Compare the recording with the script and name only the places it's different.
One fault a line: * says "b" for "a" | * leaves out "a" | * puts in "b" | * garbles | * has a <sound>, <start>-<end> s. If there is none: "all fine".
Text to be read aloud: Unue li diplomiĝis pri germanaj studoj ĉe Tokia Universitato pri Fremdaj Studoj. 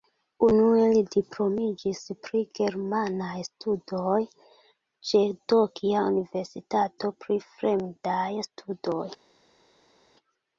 all fine